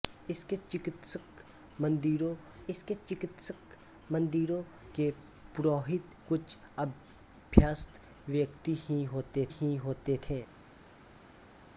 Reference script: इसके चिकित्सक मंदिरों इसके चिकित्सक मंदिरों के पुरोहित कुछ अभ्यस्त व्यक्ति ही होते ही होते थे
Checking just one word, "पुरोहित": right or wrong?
right